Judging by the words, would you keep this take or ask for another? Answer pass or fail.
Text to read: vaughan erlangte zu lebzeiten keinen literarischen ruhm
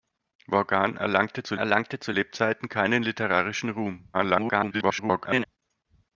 fail